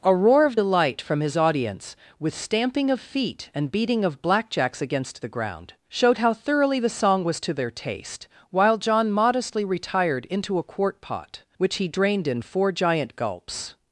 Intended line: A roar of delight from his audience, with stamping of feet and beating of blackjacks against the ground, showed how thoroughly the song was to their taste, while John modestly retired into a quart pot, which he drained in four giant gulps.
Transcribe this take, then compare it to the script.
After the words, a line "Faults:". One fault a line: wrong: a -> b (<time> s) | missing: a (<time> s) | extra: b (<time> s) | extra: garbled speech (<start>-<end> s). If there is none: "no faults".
A roar of delight from his audience, with stamping of feet and beating of blackjacks against the ground, showed how thoroughly the song was to their taste, while John modestly retired into a quart pot, which he drained in four giant gulps.
Faults:
no faults